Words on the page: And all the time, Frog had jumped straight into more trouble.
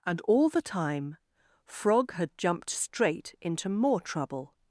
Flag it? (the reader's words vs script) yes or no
no